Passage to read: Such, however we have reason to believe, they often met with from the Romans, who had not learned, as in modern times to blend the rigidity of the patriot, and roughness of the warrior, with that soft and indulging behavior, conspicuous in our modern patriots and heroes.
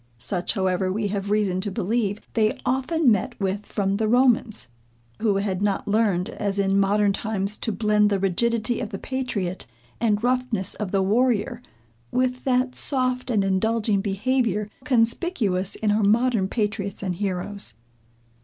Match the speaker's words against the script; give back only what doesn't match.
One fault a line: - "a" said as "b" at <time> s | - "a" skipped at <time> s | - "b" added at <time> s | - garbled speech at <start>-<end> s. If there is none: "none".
none